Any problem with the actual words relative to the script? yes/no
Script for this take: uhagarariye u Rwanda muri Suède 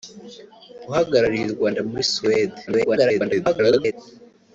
yes